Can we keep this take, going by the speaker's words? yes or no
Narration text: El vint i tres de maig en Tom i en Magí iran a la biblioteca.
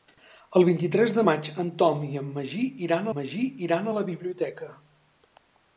no